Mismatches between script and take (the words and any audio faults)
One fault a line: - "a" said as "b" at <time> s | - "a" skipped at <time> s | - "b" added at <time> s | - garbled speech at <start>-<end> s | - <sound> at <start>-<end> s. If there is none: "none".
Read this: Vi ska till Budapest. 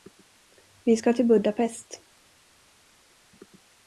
none